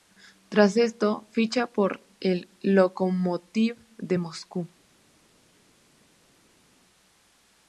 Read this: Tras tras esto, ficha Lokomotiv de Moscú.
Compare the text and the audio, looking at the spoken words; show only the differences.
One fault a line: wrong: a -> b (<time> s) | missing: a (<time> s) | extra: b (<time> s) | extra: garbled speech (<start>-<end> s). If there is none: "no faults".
missing: tras (0.8 s)
extra: por el (1.7 s)